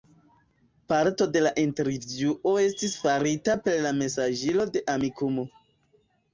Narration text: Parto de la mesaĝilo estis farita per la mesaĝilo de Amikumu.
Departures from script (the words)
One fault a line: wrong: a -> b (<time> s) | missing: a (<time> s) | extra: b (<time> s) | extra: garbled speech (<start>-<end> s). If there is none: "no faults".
wrong: mesaĝilo -> intervjuo (1.6 s)